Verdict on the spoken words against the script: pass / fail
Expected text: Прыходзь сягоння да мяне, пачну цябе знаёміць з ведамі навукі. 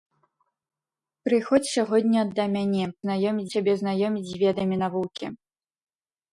fail